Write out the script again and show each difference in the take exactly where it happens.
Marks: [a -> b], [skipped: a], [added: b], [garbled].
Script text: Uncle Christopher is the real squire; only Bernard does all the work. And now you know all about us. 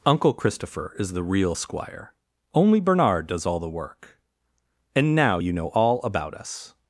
Uncle Christopher is the real squire; only Bernard does all the work. And now you know all about us.